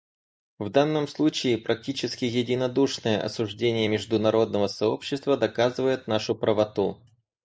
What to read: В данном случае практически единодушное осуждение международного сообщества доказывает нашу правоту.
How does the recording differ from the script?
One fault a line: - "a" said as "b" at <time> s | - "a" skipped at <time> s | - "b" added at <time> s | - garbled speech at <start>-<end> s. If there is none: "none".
none